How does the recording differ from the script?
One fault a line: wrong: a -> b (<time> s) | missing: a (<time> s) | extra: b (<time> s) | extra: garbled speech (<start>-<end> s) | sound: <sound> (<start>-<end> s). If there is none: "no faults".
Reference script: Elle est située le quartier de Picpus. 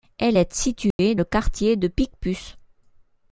sound: dropout (0.9-1.0 s)